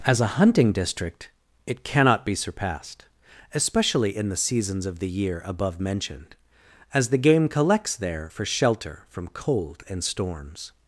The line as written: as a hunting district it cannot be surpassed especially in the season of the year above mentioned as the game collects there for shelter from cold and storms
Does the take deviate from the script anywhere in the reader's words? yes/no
yes